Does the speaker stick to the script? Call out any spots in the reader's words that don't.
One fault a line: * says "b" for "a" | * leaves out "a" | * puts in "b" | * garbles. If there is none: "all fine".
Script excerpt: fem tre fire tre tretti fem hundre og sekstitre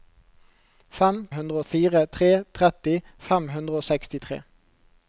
* says "hundre" for "tre"